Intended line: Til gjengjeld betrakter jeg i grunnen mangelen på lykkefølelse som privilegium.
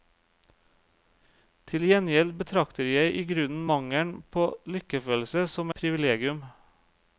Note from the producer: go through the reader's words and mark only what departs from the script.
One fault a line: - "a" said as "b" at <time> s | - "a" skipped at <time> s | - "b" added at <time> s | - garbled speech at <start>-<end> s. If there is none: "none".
none